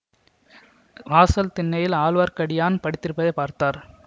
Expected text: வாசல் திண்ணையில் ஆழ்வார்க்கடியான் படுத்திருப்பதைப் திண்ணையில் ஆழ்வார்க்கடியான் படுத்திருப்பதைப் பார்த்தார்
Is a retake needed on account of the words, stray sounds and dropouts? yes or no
yes